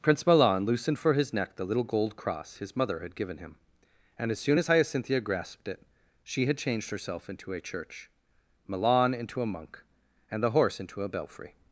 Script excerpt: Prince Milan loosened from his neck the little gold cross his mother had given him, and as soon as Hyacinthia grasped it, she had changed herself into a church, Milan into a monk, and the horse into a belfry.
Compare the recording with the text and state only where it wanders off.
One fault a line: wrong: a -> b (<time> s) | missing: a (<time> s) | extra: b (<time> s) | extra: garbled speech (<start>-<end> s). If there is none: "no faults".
wrong: from -> for (1.0 s)